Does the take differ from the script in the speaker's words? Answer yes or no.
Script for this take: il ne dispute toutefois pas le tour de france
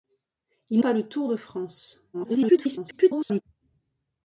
yes